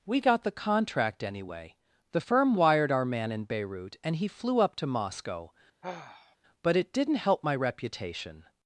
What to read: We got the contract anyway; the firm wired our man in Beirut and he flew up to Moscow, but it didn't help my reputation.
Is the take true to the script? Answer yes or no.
yes